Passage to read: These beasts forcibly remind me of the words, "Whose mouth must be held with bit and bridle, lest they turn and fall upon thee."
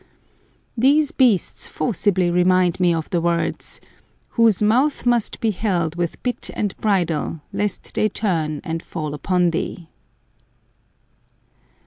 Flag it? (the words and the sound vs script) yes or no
no